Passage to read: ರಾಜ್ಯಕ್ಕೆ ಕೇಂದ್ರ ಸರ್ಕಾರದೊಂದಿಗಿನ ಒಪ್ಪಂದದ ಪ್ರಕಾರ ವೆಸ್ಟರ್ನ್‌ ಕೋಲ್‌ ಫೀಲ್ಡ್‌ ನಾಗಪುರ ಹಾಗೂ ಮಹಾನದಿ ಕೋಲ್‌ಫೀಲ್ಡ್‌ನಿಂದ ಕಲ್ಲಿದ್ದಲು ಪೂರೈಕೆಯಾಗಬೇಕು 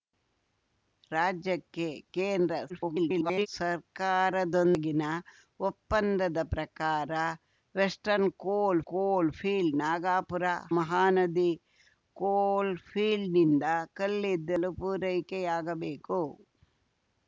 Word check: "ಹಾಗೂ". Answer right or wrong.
wrong